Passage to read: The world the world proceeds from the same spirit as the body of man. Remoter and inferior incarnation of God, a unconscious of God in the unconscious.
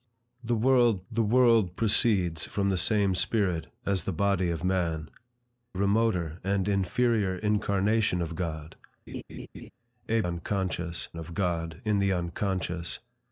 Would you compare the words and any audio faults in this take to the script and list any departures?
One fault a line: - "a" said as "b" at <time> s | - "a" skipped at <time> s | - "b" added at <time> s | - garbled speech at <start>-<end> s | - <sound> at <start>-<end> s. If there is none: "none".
- laugh at 9.1-9.7 s